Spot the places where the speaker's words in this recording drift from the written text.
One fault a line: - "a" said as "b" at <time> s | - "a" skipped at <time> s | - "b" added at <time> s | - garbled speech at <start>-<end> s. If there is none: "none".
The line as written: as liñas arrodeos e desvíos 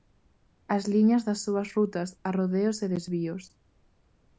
- "das súas rutas" added at 1.3 s